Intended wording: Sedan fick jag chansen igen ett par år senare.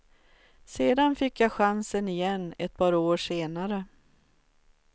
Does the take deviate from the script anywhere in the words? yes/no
no